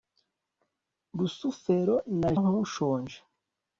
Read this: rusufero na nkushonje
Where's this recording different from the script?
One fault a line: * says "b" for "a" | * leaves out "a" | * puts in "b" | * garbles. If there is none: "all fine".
all fine